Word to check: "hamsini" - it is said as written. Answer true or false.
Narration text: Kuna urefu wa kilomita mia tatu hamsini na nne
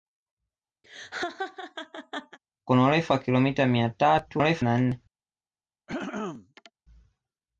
false